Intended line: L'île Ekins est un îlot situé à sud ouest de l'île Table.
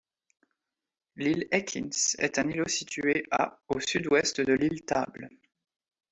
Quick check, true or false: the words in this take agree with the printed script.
false